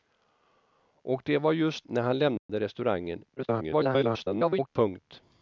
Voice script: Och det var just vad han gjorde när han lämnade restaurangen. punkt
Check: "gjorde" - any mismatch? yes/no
yes